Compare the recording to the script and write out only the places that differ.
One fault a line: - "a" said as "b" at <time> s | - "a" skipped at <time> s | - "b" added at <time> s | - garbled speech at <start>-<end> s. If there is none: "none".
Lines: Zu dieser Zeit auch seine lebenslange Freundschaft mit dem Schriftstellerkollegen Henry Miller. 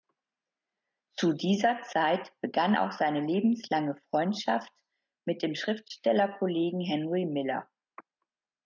- "begann" added at 2.4 s